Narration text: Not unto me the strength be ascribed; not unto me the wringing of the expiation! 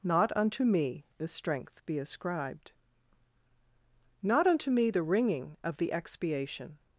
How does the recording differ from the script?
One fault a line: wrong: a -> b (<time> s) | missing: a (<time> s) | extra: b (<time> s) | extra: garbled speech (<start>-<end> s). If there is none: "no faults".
no faults